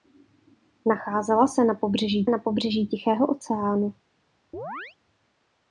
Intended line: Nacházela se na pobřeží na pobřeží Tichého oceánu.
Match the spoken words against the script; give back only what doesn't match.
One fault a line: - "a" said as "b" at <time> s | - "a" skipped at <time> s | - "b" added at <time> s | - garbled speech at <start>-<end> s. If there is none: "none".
none